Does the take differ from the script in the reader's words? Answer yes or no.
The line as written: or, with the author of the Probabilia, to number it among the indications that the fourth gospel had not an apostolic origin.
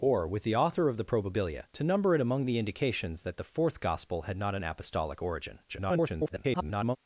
yes